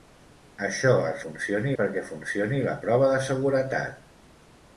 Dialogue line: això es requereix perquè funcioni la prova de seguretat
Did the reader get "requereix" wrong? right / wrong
wrong